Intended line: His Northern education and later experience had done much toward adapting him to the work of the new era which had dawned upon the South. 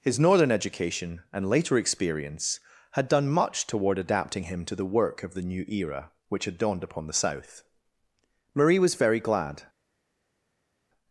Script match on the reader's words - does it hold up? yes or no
no